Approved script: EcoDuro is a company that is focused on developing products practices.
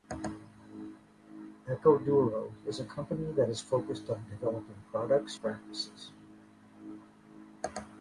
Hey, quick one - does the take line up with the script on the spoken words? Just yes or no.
yes